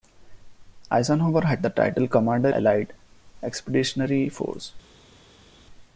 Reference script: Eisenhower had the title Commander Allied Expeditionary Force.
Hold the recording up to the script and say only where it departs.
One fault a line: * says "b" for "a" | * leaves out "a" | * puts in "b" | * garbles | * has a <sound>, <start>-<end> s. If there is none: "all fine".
all fine